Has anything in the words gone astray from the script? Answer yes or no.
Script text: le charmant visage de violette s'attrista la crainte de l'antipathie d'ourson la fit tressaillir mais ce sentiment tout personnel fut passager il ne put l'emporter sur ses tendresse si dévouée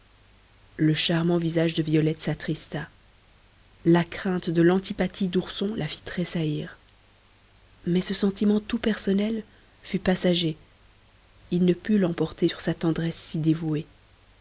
yes